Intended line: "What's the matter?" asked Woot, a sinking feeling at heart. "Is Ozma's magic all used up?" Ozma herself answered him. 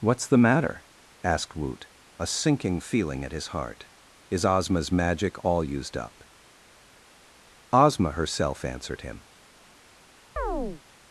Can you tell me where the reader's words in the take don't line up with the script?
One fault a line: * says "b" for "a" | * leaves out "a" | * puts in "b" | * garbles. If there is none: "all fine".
* puts in "his"